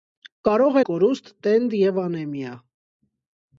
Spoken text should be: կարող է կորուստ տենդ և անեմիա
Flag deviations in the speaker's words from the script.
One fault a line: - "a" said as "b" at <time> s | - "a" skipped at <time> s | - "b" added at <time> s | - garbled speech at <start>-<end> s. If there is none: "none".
none